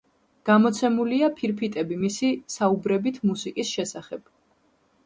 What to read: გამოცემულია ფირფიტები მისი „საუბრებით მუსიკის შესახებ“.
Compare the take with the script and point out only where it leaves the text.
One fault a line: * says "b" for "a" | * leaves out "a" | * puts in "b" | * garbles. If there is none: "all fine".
all fine